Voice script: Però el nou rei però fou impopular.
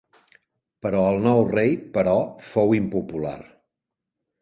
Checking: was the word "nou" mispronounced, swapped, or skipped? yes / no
no